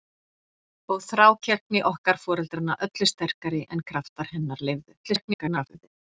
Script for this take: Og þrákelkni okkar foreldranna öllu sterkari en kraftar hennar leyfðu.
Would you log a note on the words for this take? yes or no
yes